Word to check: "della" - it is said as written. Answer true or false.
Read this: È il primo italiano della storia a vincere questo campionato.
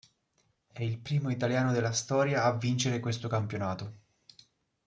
true